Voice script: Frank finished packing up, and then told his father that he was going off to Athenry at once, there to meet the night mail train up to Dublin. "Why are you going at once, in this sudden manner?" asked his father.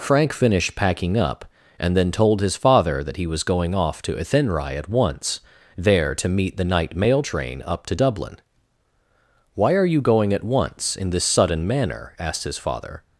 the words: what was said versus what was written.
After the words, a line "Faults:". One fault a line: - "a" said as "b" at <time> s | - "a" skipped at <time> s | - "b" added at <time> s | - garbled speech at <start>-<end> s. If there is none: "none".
Frank finished packing up, and then told his father that he was going off to Athenry at once, there to meet the night mail train up to Dublin. "Why are you going at once, in this sudden manner?" asked his father.
Faults:
none